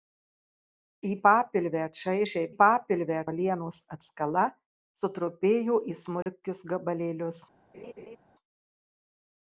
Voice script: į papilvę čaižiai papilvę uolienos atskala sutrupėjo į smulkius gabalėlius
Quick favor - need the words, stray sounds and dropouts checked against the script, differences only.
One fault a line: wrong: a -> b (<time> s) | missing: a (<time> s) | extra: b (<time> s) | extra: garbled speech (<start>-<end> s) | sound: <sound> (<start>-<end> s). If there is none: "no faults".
sound: dropout (6.2-6.3 s)
sound: laugh (7.7-8.2 s)